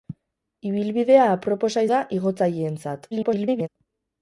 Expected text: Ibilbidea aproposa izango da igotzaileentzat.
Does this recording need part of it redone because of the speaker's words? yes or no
yes